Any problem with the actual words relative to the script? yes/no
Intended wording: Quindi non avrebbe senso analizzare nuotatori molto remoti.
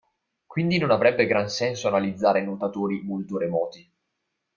yes